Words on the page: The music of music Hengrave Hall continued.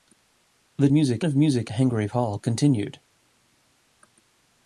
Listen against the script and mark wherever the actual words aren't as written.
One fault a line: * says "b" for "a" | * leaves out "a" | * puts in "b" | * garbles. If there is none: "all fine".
all fine